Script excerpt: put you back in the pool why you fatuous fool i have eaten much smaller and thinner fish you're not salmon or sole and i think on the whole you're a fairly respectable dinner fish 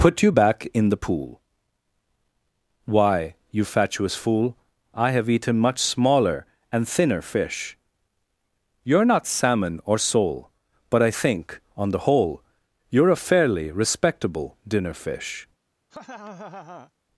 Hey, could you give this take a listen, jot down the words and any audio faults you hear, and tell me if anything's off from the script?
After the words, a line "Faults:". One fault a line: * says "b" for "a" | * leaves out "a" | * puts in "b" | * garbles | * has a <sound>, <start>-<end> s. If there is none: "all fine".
put you back in the pool why you fatuous fool i have eaten much smaller and thinner fish you're not salmon or sole but i think on the whole you're a fairly respectable dinner fish
Faults:
* says "but" for "and"
* has a laugh, 15.9-16.9 s